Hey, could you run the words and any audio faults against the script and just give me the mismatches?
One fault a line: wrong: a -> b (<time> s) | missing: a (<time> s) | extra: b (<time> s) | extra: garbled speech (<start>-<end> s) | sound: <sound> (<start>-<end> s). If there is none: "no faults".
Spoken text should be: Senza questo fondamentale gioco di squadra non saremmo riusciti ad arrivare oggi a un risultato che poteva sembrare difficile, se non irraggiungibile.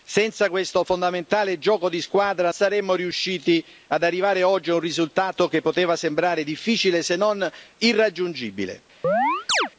missing: non (2.5 s)
sound: chirp (9.0-9.7 s)